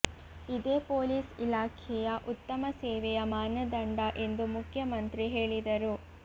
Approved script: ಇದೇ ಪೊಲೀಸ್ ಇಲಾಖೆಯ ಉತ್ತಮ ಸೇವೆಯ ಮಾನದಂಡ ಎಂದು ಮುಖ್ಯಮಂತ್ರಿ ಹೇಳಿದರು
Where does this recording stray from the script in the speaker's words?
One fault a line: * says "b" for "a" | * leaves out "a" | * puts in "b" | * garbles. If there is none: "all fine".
all fine